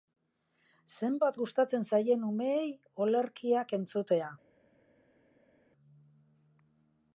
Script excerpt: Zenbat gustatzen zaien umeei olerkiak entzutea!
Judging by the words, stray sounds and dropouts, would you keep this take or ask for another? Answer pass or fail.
pass